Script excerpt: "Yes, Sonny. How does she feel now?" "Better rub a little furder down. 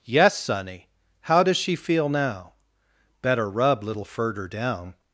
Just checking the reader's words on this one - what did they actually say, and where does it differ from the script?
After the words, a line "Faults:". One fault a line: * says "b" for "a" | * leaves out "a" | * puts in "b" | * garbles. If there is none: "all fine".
"Yes, Sonny. How does she feel now?" "Better rub little furder down.
Faults:
* leaves out "a"